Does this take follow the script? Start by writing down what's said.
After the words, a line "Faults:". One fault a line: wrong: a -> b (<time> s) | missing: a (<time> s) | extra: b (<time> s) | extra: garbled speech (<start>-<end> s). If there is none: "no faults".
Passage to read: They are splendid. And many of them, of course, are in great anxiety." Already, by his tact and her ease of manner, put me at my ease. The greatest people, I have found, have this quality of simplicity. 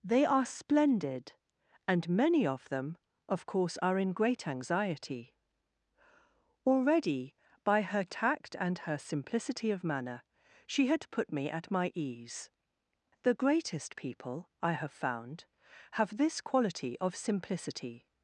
They are splendid. And many of them, of course, are in great anxiety." Already, by her tact and her simplicity of manner, she had put me at my ease. The greatest people, I have found, have this quality of simplicity.
Faults:
wrong: his -> her (7.8 s)
wrong: ease -> simplicity (9.0 s)
extra: she had (10.7 s)